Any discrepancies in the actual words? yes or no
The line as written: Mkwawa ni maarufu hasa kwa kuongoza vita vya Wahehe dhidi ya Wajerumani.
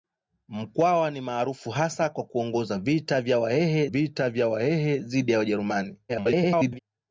yes